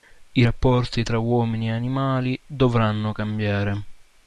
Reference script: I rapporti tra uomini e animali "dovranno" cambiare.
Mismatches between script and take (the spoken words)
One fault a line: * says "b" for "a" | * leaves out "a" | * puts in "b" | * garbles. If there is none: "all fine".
all fine